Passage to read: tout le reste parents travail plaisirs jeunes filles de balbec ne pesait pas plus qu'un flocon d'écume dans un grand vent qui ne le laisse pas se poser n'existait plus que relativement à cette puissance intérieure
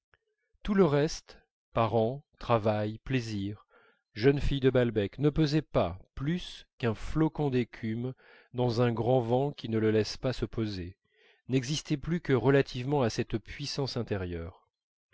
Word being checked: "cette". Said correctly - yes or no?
yes